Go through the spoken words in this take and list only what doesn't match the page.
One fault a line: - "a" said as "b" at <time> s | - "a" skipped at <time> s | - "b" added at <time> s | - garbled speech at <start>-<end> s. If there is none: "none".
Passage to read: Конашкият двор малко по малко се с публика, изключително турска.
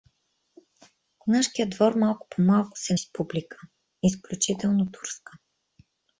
none